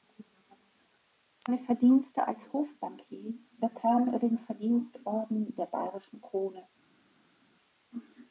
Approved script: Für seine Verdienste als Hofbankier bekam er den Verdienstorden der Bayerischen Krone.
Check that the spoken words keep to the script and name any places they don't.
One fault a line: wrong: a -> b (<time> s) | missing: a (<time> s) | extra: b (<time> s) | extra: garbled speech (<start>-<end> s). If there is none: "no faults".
no faults